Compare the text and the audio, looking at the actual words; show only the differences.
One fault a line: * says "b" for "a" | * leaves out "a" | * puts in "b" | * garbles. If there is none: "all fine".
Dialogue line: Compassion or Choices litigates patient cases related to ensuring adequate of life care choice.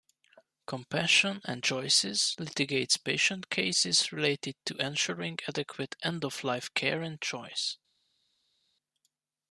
* says "and" for "or"
* puts in "end"
* puts in "and"